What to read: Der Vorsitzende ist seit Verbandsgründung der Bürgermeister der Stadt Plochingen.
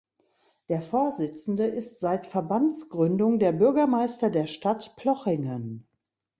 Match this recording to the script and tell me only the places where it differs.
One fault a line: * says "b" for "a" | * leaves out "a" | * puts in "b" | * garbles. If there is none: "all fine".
all fine